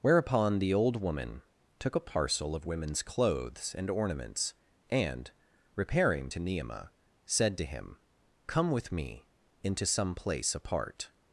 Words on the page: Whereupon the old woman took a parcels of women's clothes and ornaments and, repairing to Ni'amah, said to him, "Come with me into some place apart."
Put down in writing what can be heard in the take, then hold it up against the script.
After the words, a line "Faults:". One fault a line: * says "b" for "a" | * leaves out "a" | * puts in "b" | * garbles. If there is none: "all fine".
Whereupon the old woman took a parcel of women's clothes and ornaments and, repairing to Ni'amah, said to him, "Come with me into some place apart."
Faults:
* says "parcel" for "parcels"